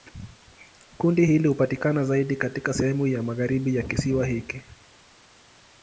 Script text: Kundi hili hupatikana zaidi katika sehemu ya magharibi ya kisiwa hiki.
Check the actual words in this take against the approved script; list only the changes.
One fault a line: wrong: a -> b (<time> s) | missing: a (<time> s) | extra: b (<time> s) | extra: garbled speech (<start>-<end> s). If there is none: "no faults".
no faults